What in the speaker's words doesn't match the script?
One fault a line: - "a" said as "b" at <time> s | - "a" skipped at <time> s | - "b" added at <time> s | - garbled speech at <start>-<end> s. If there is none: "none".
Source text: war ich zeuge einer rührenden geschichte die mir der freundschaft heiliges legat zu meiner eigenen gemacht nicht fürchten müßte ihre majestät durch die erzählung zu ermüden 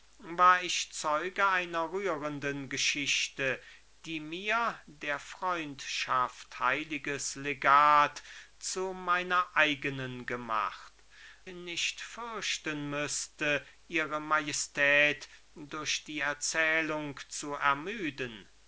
none